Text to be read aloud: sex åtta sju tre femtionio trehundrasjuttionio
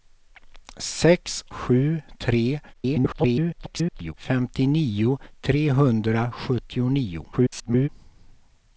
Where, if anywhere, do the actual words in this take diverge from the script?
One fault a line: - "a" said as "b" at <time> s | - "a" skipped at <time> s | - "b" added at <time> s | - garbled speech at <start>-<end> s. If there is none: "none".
- "åtta" skipped at 1.5 s
- garbled speech at 2.7-4.1 s
- garbled speech at 7.3-7.9 s